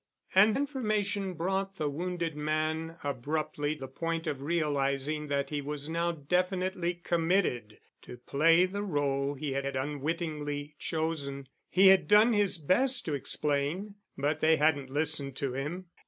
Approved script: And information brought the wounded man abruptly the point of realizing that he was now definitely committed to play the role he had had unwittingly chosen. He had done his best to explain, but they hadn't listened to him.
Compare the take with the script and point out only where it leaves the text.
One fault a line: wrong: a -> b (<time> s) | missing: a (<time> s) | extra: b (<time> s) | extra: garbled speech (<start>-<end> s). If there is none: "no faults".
no faults